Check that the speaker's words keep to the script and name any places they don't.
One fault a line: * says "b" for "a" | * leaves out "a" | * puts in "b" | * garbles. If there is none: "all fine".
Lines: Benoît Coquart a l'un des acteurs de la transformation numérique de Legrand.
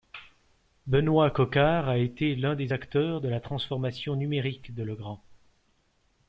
* puts in "été"